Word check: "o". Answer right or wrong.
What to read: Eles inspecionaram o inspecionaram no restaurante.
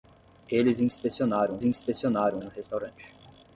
right